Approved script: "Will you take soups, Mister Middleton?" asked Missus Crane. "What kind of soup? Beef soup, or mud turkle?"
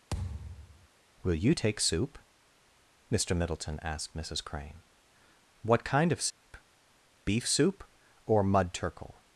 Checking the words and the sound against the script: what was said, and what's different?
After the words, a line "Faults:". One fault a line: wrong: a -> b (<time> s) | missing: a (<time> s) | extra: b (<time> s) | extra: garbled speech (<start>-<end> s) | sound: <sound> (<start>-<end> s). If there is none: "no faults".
"Will you take soup, Mister Middleton?" asked Missus Crane. "What kind of soup? Beef soup, or mud turkle?"
Faults:
sound: thud (0.1-0.9 s)
wrong: soups -> soup (1.8 s)
sound: dropout (6.3-6.4 s)